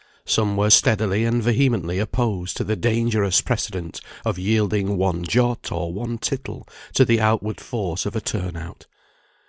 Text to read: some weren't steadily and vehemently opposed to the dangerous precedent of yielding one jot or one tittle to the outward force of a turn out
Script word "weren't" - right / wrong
wrong